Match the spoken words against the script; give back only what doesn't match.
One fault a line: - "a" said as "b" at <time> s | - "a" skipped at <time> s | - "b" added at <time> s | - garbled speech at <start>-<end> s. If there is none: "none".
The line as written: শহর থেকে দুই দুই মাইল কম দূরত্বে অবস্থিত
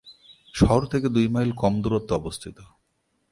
- "দুই" skipped at 1.3 s